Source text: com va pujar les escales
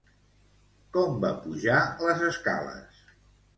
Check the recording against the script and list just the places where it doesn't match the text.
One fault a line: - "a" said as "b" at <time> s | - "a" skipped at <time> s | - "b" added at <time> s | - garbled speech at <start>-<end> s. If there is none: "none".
none